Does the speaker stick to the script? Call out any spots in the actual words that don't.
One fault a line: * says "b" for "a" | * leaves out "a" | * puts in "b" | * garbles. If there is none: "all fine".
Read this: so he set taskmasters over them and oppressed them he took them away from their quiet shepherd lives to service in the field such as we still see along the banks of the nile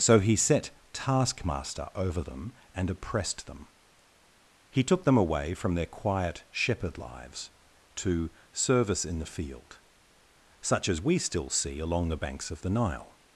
* says "taskmaster" for "taskmasters"